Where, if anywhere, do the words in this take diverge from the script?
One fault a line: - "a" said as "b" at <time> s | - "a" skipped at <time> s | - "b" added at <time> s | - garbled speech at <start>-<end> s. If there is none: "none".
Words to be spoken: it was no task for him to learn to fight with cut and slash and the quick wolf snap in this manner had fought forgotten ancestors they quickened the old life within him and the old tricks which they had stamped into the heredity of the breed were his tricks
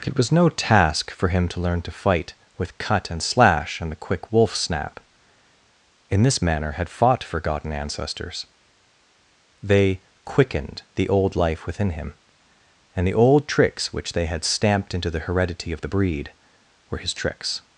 none